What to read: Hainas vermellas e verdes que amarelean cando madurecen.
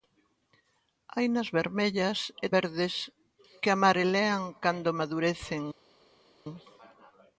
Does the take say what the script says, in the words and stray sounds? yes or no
yes